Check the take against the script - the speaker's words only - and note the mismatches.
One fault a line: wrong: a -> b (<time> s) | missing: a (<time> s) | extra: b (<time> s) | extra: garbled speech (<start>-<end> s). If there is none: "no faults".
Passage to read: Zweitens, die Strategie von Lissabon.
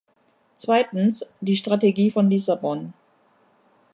no faults